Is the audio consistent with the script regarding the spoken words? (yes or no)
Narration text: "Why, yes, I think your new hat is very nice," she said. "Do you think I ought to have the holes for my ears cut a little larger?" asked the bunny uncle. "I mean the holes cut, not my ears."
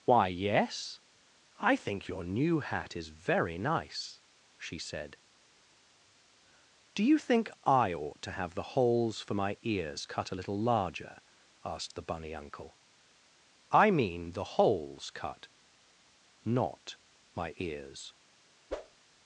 yes